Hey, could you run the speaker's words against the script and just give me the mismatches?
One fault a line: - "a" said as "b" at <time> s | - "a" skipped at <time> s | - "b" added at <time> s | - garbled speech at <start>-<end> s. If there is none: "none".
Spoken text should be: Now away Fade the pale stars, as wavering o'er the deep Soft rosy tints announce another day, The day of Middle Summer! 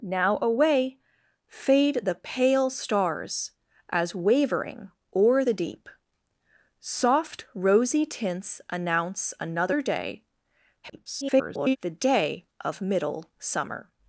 - garbled speech at 10.8-11.8 s